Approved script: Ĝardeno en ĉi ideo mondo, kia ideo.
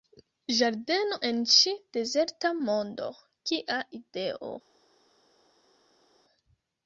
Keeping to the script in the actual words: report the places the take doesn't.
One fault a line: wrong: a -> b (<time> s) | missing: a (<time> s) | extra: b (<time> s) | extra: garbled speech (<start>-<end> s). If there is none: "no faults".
wrong: ideo -> dezerta (2.0 s)